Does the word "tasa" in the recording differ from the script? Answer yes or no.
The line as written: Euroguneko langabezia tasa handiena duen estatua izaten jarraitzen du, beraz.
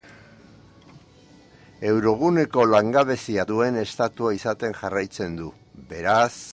yes